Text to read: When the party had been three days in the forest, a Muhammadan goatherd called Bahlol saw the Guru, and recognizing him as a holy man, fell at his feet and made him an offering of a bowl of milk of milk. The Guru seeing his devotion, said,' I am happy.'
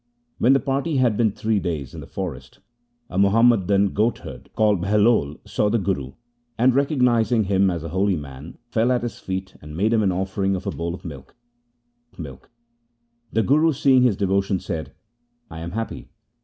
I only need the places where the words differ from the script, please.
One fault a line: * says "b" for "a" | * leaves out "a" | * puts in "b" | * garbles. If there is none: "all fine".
all fine